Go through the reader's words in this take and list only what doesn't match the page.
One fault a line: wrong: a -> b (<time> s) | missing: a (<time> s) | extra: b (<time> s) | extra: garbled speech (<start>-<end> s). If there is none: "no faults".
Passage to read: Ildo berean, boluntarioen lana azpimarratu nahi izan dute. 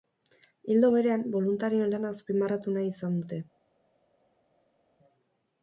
no faults